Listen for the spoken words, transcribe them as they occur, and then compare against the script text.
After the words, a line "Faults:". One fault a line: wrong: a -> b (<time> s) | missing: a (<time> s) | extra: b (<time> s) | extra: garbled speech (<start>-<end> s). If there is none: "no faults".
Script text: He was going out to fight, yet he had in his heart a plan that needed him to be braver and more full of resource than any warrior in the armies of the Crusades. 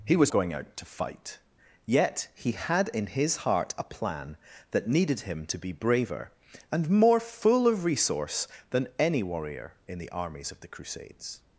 He was going out to fight, yet he had in his heart a plan that needed him to be braver and more full of resource than any warrior in the armies of the Crusades.
Faults:
no faults